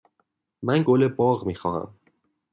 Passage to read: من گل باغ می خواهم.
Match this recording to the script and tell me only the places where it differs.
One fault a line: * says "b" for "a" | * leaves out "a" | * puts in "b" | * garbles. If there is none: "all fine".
all fine